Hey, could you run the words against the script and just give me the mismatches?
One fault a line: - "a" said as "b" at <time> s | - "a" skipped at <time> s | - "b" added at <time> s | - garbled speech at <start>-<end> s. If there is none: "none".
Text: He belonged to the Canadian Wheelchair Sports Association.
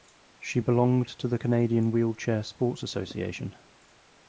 - "He" said as "She" at 0.4 s